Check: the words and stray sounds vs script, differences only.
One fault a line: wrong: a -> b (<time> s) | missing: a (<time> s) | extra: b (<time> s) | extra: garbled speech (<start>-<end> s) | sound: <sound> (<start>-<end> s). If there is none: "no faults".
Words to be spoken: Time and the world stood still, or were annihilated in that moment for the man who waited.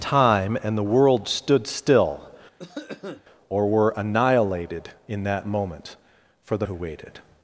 sound: cough (2.6-3.2 s)
missing: man (6.7 s)